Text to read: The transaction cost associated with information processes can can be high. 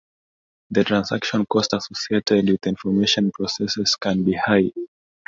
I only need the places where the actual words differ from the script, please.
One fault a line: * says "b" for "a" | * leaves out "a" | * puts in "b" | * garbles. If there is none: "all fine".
* leaves out "can"